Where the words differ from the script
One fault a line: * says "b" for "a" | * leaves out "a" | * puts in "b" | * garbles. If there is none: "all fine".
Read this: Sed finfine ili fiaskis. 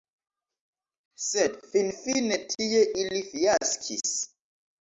* puts in "tie"